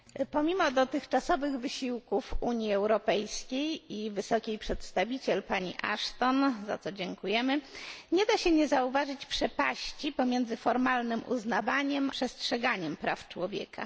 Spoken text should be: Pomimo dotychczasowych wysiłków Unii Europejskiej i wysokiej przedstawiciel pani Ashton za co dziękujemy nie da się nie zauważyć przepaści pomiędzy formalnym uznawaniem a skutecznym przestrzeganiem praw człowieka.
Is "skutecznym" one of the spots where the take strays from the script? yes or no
yes